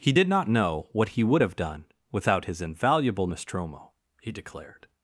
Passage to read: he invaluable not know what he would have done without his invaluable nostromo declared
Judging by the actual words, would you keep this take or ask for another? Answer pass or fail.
fail